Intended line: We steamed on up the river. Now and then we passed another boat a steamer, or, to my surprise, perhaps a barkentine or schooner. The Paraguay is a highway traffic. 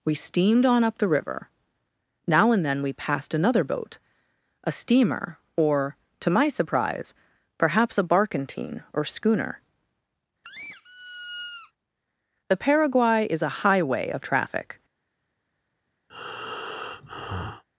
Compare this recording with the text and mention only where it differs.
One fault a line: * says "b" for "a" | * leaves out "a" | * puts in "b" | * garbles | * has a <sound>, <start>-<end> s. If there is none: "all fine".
* has a squeak, 10.4-11.7 s
* puts in "of"
* has a breath, 16.1-17.6 s